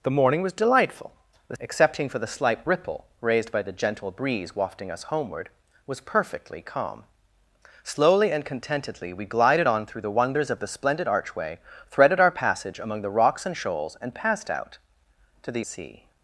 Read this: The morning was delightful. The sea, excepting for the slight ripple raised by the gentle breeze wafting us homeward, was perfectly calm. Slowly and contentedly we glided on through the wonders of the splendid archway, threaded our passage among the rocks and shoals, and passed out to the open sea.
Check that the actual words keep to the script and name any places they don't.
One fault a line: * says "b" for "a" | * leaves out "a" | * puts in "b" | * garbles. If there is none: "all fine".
* leaves out "sea"
* leaves out "open"